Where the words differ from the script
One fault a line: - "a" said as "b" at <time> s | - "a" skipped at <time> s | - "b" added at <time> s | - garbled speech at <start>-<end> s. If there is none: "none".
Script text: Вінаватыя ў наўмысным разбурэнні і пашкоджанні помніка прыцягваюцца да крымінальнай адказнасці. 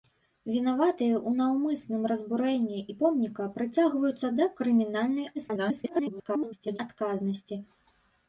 - "пашкоджанні" skipped at 3.0 s
- garbled speech at 5.3-6.8 s